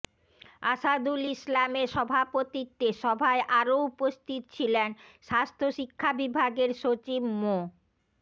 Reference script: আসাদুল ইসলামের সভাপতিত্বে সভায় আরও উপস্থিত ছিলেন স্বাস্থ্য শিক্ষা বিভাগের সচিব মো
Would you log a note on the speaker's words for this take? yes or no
no